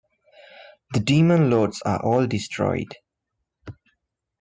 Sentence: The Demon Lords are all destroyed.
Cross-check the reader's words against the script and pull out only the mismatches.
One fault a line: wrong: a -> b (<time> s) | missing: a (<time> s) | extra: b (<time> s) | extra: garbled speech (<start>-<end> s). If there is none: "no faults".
no faults